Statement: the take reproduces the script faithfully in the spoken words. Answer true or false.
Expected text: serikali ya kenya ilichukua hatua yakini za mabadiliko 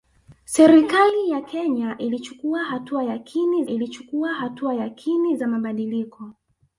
false